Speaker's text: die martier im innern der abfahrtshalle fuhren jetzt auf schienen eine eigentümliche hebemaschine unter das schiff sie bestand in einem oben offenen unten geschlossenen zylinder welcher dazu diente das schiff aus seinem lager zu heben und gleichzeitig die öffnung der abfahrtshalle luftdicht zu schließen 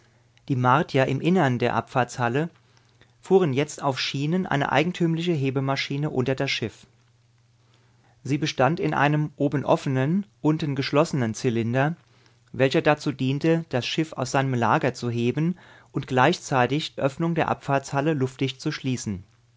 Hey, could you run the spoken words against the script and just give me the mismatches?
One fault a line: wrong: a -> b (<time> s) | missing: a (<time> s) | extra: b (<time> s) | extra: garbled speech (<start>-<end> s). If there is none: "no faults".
missing: die (17.0 s)